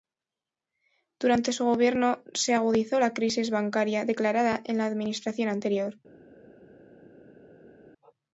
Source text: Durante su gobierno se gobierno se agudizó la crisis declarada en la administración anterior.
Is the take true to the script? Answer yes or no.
no